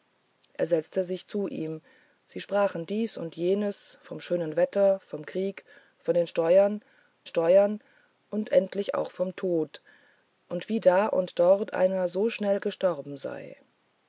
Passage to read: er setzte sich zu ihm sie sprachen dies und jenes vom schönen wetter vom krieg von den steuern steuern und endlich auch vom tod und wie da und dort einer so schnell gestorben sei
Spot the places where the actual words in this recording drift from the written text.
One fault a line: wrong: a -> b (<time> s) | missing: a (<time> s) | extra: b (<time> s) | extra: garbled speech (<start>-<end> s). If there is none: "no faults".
no faults